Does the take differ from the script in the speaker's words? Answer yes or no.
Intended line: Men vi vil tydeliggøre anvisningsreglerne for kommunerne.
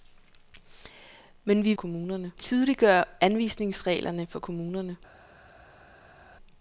yes